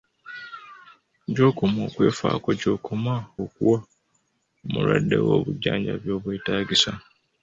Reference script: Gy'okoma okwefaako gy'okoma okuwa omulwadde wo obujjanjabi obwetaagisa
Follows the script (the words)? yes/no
yes